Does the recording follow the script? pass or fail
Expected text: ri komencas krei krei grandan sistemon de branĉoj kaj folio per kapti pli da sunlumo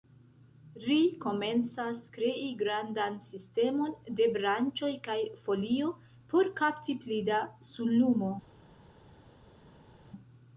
fail